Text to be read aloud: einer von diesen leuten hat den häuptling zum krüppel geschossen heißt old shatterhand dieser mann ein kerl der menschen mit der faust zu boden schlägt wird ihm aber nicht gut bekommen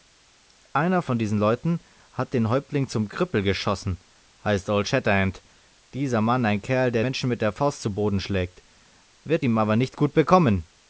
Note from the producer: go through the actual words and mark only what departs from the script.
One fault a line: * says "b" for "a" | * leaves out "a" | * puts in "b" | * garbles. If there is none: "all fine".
all fine